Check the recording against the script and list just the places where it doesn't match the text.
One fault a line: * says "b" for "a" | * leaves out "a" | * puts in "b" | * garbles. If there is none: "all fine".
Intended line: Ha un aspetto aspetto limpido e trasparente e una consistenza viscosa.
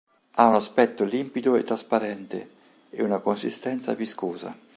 * leaves out "aspetto"